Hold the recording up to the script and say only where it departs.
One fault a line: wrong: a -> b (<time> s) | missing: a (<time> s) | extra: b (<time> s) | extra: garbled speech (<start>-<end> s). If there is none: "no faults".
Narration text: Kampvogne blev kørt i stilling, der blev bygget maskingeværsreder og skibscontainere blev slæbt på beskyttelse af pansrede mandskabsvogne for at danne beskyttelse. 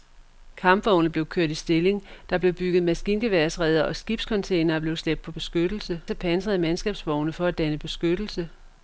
no faults